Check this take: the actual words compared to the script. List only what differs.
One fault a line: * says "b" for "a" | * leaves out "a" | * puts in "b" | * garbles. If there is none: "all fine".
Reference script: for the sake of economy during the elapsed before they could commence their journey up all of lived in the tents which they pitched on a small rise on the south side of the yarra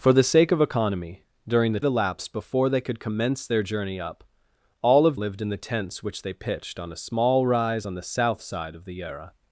all fine